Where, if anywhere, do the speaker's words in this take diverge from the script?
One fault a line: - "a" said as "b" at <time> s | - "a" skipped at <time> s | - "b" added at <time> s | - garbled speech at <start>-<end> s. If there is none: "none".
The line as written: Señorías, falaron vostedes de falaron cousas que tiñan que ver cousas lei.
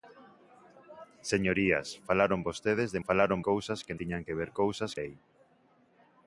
none